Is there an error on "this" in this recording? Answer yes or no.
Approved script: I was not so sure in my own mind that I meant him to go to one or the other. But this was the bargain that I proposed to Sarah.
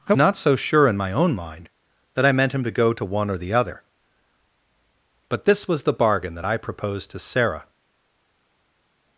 no